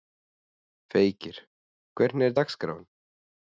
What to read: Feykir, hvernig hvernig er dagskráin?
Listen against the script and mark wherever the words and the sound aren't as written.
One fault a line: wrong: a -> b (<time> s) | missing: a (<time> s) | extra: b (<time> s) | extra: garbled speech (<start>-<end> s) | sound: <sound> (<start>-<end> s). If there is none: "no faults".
missing: hvernig (2.3 s)